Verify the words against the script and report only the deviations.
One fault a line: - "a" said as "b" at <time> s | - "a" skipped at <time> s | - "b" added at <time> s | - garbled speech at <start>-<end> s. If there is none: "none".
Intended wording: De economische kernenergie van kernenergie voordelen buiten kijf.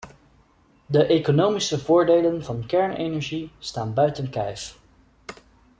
- "kernenergie" said as "voordelen" at 1.8 s
- "voordelen" said as "staan" at 3.6 s